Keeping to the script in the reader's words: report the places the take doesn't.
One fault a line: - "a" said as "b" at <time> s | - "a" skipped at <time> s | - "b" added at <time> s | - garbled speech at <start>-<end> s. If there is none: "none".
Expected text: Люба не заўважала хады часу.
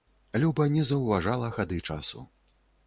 none